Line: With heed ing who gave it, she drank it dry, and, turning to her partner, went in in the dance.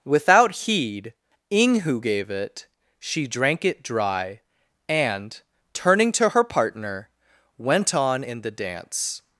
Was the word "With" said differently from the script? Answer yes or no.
yes